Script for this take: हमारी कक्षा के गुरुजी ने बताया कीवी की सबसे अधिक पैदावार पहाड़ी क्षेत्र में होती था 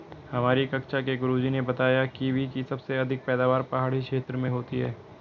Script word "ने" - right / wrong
right